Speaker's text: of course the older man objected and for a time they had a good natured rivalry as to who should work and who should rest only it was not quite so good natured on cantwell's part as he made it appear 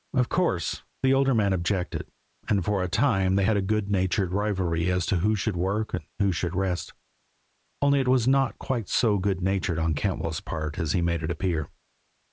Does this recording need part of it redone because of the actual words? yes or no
no